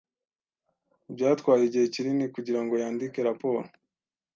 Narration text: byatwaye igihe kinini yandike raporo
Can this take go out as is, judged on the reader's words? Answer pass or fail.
fail